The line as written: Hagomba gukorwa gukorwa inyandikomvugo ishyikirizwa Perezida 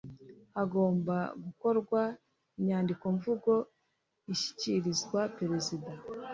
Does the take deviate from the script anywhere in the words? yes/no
yes